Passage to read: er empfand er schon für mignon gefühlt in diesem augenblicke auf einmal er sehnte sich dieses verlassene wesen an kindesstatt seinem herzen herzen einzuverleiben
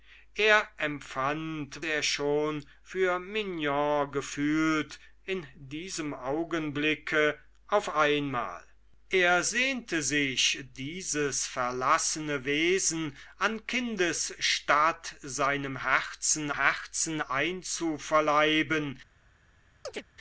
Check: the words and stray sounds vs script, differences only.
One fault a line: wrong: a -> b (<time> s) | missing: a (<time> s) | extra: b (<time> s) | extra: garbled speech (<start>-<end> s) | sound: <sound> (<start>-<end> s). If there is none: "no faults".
sound: chirp (19.9-20.0 s)